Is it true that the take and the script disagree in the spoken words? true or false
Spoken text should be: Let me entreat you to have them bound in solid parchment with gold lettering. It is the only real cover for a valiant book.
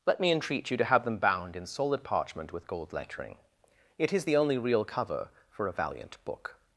false